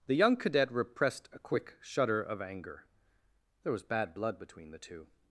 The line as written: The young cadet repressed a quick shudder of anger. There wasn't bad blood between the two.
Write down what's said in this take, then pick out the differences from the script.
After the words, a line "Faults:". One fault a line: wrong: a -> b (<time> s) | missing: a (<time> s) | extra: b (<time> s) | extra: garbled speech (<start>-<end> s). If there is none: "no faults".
The young cadet repressed a quick shudder of anger. There was bad blood between the two.
Faults:
wrong: wasn't -> was (3.7 s)